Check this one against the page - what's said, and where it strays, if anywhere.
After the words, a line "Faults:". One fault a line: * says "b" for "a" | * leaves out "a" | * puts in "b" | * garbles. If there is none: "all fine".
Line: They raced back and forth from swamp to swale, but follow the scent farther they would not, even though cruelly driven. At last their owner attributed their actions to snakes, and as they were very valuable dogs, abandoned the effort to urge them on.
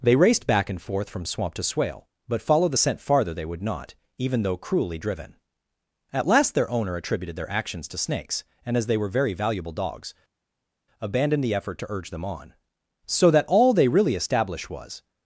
They raced back and forth from swamp to swale, but follow the scent farther they would not, even though cruelly driven. At last their owner attributed their actions to snakes, and as they were very valuable dogs, abandoned the effort to urge them on. So that all they really established was
Faults:
* puts in "So that all they really established was"